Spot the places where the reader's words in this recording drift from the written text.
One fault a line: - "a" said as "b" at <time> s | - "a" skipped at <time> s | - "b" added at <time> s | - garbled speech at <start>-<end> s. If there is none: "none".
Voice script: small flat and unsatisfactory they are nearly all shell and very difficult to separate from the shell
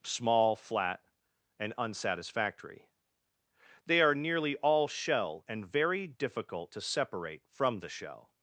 none